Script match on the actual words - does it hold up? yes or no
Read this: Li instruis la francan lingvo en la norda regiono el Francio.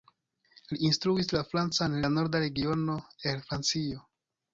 no